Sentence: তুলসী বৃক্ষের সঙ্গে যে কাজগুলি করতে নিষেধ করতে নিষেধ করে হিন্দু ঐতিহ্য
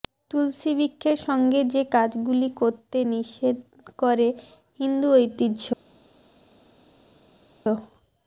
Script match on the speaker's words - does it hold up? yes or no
no